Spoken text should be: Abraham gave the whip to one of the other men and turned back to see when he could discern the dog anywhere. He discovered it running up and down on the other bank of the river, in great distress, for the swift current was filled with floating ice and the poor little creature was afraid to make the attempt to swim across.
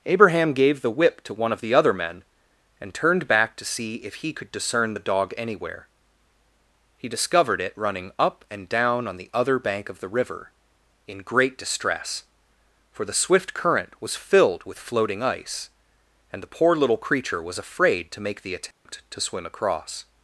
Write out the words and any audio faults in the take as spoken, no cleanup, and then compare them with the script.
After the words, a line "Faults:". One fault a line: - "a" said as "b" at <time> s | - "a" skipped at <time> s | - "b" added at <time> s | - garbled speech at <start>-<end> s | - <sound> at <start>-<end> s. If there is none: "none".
Abraham gave the whip to one of the other men and turned back to see if he could discern the dog anywhere. He discovered it running up and down on the other bank of the river, in great distress, for the swift current was filled with floating ice and the poor little creature was afraid to make the attempt to swim across.
Faults:
- "when" said as "if" at 4.0 s
- dropout at 18.7-18.9 s